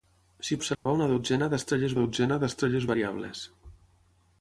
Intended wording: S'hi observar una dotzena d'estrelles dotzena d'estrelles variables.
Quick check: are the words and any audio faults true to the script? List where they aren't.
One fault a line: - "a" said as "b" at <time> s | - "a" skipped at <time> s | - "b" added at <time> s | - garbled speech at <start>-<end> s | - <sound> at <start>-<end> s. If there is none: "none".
- dropout at 0.7-0.9 s